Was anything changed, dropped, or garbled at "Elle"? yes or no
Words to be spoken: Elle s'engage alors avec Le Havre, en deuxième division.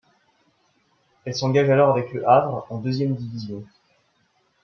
no